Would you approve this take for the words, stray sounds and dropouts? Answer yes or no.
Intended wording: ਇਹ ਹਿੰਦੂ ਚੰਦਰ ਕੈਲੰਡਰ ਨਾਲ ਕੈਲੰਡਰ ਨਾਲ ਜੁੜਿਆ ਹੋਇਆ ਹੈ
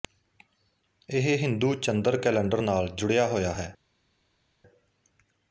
no